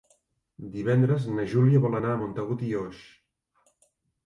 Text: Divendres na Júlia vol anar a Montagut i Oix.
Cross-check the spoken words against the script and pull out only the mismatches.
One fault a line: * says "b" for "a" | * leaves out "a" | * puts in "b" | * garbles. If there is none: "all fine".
all fine